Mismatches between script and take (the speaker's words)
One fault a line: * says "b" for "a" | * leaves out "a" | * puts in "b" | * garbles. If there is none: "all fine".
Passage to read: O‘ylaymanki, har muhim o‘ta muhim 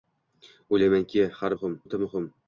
all fine